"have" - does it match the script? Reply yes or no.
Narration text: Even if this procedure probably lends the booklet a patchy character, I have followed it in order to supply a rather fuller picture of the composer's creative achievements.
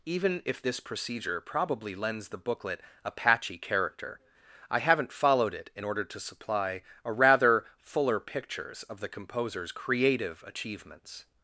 no